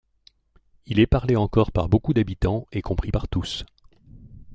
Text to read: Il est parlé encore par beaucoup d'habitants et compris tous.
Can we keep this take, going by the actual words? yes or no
no